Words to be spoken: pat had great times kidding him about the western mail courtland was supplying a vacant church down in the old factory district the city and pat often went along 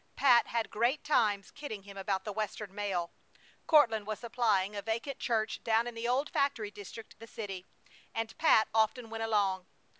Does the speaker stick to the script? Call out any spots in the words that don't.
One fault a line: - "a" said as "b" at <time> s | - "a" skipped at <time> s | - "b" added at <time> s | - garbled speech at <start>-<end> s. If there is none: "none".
none